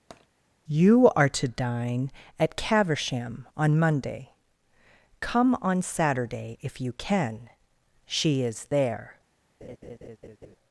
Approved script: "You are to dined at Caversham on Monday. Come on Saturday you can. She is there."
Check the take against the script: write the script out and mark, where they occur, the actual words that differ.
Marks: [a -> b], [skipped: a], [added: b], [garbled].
"You are to [dined -> dine] at Caversham on Monday. Come on Saturday [added: if] you can. She is there."